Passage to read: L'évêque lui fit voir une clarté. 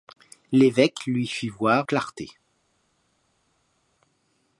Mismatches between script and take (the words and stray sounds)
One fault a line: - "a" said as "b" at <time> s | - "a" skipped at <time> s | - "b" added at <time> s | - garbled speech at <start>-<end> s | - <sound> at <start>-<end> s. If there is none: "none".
- "une" skipped at 1.9 s